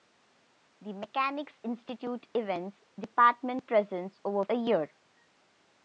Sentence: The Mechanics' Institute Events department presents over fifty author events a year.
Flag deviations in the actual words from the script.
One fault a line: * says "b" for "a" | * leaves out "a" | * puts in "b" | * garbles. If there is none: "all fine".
* leaves out "fifty author events"